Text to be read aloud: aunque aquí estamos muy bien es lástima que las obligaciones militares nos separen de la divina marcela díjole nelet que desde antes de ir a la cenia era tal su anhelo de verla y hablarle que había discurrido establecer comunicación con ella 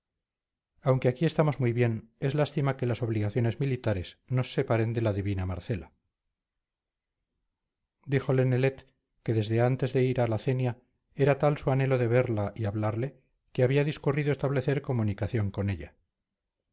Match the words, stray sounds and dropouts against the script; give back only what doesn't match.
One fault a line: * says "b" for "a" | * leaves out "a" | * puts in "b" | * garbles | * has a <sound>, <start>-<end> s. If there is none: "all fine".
all fine